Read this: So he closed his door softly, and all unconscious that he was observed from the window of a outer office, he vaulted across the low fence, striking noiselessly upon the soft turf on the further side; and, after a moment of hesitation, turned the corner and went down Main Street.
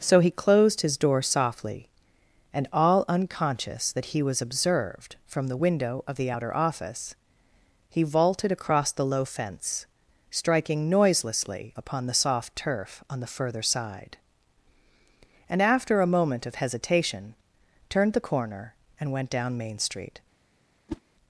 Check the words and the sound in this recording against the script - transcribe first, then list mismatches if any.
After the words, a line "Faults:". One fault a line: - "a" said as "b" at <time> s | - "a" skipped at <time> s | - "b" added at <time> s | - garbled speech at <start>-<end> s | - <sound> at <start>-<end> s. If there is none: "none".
So he closed his door softly, and all unconscious that he was observed from the window of the outer office, he vaulted across the low fence, striking noiselessly upon the soft turf on the further side; and, after a moment of hesitation, turned the corner and went down Main Street.
Faults:
- "a" said as "the" at 6.2 s
- whoosh at 20.9-21.0 s